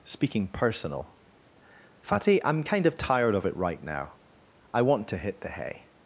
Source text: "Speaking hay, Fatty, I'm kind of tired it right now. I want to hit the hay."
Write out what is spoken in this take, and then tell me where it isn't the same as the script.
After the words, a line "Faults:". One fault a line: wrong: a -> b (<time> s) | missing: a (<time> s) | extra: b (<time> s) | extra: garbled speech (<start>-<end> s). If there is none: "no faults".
"Speaking personal, Fatty, I'm kind of tired of it right now. I want to hit the hay."
Faults:
wrong: hay -> personal (0.5 s)
extra: of (3.3 s)